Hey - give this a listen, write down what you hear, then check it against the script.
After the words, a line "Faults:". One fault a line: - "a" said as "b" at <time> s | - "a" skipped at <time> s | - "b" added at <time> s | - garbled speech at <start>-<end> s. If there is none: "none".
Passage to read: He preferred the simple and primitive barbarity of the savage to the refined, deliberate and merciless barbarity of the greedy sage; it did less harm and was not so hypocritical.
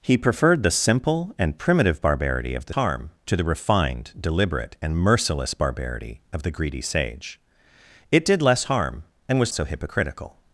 He preferred the simple and primitive barbarity of the harm to the refined, deliberate and merciless barbarity of the greedy sage; it did less harm and was so hypocritical.
Faults:
- "savage" said as "harm" at 2.7 s
- "not" skipped at 9.5 s